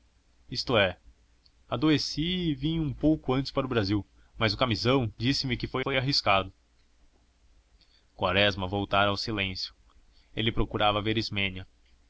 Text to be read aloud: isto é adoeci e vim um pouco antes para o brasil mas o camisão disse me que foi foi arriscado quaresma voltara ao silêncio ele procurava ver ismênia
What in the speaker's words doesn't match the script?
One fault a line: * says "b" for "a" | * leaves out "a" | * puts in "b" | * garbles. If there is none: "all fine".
all fine